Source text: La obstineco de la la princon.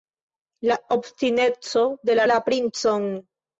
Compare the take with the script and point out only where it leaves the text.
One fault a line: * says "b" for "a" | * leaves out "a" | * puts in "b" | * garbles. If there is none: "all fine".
all fine